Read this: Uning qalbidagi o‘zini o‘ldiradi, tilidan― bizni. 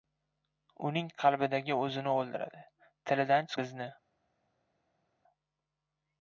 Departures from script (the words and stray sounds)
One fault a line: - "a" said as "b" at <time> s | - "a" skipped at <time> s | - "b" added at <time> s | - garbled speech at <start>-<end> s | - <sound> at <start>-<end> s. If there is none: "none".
none